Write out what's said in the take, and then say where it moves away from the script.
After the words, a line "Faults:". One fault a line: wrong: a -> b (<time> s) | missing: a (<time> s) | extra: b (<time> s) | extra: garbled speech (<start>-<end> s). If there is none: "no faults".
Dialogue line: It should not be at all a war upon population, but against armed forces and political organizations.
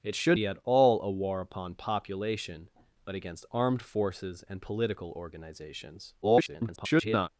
It should be at all a war upon population, but against armed forces and political organizations. [garbled]
Faults:
missing: not (0.4 s)
extra: garbled speech (6.2-7.3 s)